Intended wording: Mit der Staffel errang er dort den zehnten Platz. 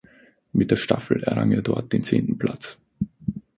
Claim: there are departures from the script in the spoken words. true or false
false